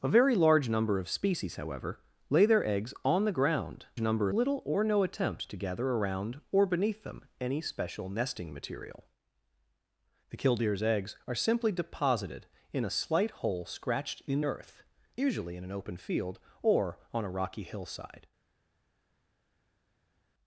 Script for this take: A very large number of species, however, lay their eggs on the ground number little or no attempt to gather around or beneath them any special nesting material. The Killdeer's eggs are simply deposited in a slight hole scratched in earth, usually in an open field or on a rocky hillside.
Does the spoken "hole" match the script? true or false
true